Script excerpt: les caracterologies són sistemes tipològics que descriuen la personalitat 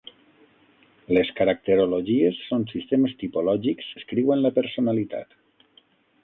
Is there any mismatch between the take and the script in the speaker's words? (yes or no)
yes